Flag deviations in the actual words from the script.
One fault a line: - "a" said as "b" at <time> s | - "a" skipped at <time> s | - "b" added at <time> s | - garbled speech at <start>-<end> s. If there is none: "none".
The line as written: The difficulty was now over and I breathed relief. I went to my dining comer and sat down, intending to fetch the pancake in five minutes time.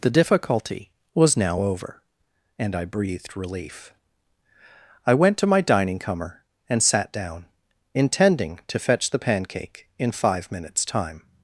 none